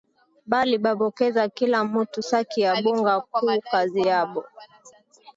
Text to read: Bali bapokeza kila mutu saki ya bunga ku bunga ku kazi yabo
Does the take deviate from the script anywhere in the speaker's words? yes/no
yes